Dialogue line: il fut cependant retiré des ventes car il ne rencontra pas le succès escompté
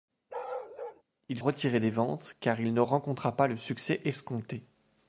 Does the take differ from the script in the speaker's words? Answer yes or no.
yes